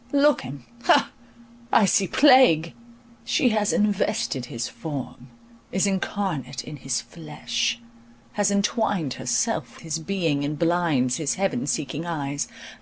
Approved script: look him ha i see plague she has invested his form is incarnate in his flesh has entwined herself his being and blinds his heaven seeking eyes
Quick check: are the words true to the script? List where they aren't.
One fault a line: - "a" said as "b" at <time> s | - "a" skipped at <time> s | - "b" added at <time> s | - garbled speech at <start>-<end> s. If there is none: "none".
none